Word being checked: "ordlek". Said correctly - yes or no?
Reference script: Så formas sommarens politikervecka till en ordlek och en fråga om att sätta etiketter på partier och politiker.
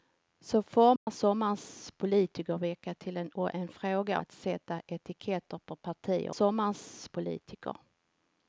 no